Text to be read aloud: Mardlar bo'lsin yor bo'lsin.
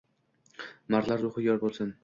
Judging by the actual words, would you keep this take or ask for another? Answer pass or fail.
fail